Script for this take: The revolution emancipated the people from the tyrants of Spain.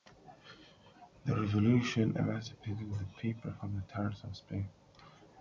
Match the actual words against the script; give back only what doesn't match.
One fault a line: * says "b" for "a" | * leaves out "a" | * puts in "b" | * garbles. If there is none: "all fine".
all fine